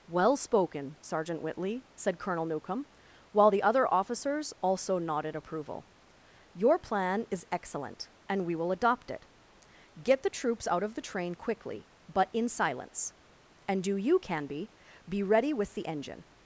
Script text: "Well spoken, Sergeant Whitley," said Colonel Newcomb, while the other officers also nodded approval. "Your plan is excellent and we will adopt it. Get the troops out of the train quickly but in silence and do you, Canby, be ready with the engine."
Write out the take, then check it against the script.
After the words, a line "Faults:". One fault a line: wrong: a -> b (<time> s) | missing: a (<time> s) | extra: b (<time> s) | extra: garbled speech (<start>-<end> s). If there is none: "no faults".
"Well spoken, Sergeant Whitley," said Colonel Newcomb, while the other officers also nodded approval. "Your plan is excellent and we will adopt it. Get the troops out of the train quickly but in silence and do you, Canby, be ready with the engine."
Faults:
no faults